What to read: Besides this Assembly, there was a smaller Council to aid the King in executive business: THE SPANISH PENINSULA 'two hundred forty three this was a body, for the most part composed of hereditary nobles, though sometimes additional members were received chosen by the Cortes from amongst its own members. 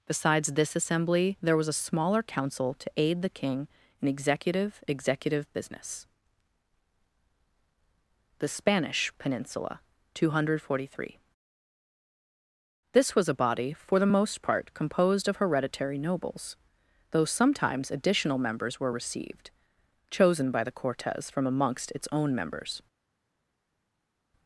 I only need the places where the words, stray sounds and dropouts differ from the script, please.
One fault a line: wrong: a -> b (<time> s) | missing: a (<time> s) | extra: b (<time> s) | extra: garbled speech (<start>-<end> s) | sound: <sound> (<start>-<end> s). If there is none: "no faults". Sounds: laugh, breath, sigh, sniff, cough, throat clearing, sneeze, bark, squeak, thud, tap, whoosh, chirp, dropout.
extra: executive (4.9 s)